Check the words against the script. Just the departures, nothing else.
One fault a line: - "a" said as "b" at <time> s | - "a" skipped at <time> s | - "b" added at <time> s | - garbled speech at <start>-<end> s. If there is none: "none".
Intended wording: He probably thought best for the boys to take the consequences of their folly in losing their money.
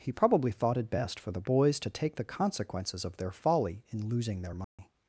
- "it" added at 0.8 s